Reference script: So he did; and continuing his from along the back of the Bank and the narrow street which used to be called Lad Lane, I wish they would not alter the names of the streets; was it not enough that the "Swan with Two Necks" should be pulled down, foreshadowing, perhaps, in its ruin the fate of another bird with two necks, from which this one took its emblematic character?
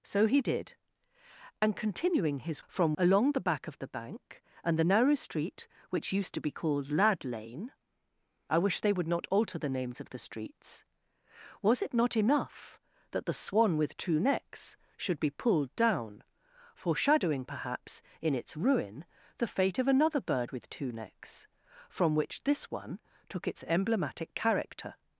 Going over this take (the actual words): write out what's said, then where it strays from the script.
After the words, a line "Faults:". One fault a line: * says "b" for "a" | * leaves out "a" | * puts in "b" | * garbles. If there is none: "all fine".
So he did; and continuing his from along the back of the Bank and the narrow street which used to be called Lad Lane, I wish they would not alter the names of the streets; was it not enough that the "Swan with Two Necks" should be pulled down, foreshadowing, perhaps, in its ruin the fate of another bird with two necks, from which this one took its emblematic character?
Faults:
all fine